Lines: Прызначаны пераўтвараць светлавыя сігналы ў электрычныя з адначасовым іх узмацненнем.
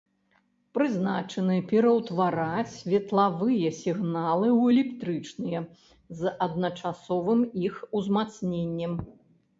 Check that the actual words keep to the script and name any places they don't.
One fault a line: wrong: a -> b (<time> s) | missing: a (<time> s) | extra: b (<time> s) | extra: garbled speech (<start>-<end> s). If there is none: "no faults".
no faults